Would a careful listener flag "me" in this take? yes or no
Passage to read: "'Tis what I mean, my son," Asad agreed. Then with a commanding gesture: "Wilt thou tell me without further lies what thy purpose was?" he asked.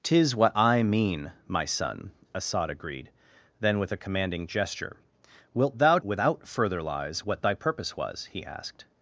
yes